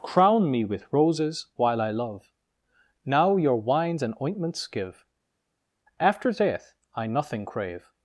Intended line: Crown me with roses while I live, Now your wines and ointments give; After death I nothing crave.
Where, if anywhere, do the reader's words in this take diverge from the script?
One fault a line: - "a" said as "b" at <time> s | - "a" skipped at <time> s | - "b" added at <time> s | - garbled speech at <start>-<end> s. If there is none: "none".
- "live" said as "love" at 1.9 s